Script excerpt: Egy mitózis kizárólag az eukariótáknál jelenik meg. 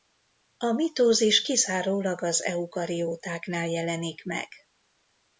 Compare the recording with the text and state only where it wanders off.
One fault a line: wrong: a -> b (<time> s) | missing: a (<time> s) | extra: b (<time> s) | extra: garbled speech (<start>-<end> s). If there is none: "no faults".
wrong: Egy -> A (0.6 s)